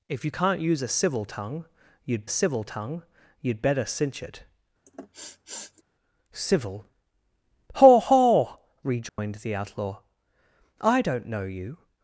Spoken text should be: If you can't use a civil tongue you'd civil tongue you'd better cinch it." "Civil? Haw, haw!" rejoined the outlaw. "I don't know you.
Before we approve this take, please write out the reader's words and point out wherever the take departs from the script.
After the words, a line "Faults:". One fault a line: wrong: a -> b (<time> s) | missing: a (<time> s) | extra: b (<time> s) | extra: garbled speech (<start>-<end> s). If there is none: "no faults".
If you can't use a civil tongue you'd civil tongue you'd better cinch it." "Civil? Haw, haw!" rejoined the outlaw. "I don't know you.
Faults:
no faults